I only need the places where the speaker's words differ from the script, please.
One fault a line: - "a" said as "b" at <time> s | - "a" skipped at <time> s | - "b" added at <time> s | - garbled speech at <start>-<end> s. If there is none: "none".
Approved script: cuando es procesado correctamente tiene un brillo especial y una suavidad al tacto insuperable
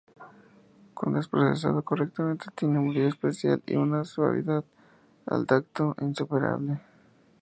none